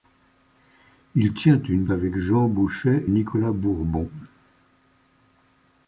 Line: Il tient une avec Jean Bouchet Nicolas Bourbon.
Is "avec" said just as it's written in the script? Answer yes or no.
yes